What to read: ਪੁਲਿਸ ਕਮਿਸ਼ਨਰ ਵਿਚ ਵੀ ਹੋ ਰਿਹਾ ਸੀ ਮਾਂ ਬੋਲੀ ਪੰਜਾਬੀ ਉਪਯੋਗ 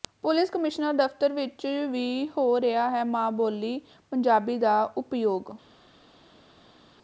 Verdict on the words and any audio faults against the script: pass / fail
fail